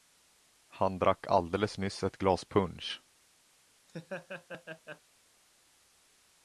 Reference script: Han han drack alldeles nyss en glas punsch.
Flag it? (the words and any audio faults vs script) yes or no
yes